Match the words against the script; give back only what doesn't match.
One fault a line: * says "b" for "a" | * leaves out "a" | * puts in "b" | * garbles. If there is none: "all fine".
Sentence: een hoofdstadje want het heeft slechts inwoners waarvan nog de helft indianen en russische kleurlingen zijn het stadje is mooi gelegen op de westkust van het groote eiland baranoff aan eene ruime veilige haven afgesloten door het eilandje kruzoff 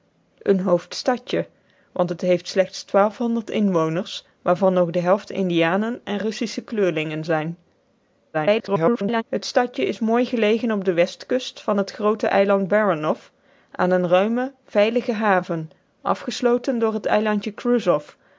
* garbles